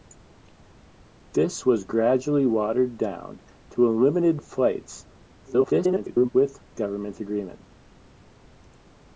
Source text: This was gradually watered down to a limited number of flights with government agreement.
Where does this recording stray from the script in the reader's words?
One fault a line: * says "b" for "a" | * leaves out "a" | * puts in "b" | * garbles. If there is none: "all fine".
* leaves out "number"
* garbles